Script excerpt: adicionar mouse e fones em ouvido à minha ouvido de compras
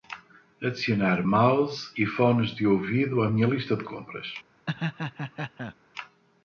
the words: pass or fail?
fail